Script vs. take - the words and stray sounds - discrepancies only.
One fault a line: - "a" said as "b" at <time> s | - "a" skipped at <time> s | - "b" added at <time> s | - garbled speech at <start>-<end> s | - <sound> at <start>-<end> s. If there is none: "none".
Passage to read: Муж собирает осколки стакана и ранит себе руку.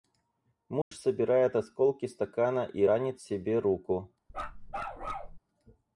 - dropout at 0.8-0.9 s
- bark at 4.3-5.4 s